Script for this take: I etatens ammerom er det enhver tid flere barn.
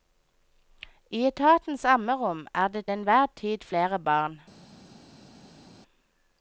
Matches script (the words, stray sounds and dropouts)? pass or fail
pass